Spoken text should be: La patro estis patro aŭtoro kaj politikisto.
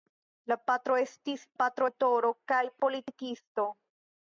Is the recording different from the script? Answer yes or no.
no